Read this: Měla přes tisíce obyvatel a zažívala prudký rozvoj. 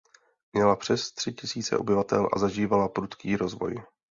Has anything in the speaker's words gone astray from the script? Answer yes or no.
yes